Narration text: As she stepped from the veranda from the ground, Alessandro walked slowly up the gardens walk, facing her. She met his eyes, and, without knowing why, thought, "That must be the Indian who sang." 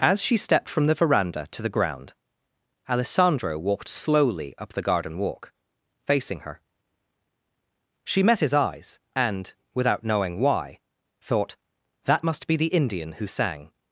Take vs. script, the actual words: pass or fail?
fail